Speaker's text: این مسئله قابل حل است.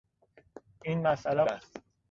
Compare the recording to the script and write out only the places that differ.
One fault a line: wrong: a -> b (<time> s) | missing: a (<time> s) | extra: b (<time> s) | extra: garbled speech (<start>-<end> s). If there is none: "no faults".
missing: قابل حل (1.4 s)